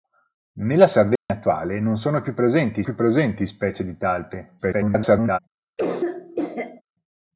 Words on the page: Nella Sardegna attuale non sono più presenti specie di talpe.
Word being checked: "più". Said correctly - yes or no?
yes